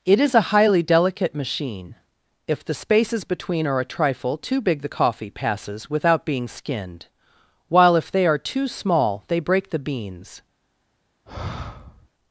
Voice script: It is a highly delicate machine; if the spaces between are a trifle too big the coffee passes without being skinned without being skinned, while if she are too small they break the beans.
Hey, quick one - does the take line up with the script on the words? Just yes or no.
no